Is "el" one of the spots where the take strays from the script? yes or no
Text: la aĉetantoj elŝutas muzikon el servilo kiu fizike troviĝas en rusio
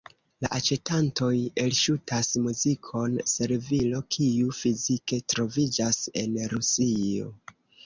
yes